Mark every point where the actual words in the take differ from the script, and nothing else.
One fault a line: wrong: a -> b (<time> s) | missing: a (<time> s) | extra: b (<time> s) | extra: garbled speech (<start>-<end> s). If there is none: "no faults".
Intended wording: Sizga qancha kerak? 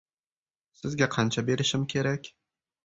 extra: berishim (1.5 s)